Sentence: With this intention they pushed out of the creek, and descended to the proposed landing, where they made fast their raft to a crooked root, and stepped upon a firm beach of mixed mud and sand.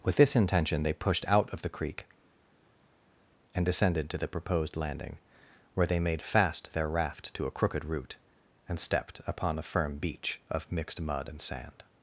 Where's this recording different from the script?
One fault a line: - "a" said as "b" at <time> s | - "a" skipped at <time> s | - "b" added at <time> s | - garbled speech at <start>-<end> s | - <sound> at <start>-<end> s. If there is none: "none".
none